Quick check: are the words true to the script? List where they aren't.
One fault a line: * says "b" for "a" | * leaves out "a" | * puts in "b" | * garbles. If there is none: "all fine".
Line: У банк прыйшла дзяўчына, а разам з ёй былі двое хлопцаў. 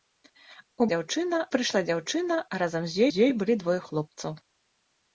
* says "дзяўчына" for "банк"
* puts in "з"